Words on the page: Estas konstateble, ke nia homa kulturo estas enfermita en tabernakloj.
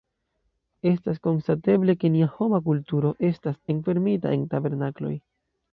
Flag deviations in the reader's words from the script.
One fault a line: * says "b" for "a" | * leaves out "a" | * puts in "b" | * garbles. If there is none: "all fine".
all fine